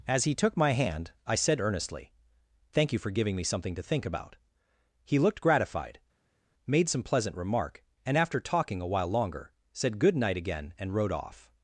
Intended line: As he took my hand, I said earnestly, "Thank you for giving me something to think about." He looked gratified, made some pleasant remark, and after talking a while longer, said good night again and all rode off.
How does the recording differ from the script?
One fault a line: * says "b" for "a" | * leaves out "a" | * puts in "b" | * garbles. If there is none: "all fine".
* leaves out "all"